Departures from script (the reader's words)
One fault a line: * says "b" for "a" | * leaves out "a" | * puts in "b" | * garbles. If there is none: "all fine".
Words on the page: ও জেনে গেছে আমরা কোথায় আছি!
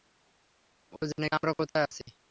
* leaves out "গেছে"